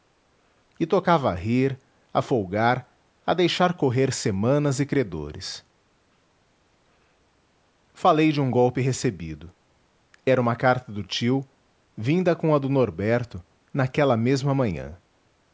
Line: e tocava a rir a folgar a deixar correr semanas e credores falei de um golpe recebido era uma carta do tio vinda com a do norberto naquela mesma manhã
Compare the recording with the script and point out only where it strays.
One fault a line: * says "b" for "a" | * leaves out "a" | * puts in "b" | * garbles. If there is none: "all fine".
all fine